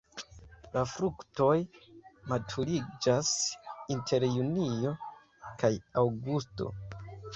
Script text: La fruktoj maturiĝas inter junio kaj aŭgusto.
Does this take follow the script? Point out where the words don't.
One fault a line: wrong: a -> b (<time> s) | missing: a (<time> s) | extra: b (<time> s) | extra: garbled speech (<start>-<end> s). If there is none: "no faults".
no faults